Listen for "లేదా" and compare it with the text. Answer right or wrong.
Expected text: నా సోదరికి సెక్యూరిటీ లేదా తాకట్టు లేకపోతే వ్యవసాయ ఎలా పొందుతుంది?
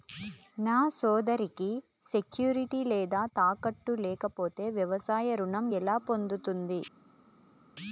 right